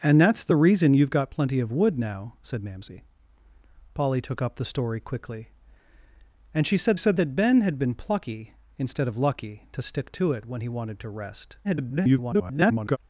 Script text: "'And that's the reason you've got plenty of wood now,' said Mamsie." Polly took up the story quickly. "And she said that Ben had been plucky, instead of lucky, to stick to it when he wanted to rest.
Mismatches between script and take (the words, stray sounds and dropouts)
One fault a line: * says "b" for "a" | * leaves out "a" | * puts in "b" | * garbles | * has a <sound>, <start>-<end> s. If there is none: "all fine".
* puts in "said"
* garbles